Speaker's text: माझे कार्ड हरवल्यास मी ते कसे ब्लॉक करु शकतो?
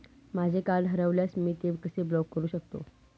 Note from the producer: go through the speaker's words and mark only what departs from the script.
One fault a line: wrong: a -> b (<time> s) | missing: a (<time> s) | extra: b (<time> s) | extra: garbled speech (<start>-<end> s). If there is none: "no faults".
no faults